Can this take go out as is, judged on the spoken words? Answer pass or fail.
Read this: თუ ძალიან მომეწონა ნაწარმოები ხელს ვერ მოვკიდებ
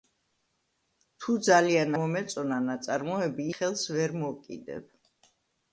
pass